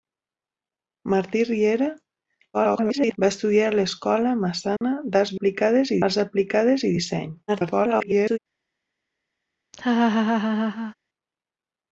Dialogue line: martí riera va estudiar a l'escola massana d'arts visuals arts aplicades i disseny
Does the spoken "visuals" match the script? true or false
false